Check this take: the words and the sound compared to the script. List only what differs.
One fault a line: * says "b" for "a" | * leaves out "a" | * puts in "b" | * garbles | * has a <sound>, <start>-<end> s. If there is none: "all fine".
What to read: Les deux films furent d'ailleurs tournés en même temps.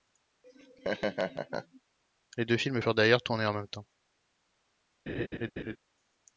* has a laugh, 0.4-1.8 s
* has a laugh, 5.1-5.8 s